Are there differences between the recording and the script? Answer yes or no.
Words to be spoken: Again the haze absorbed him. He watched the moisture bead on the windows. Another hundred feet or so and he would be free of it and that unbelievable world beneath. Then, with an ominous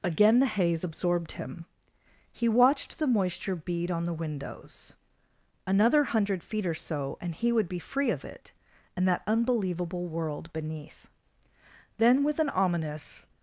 no